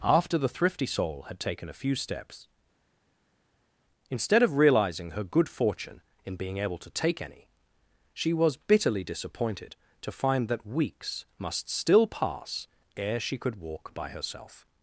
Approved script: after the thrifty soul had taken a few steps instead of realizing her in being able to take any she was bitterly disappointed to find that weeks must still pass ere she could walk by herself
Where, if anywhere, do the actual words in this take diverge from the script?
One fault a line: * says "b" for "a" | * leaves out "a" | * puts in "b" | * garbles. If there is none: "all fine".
* puts in "good fortune"